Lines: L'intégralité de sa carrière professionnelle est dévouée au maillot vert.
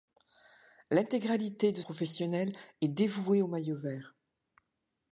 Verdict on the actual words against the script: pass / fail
fail